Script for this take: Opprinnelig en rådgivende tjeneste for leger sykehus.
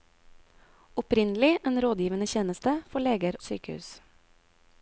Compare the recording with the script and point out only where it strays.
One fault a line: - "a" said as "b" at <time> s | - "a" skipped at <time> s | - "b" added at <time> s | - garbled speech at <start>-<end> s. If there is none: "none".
none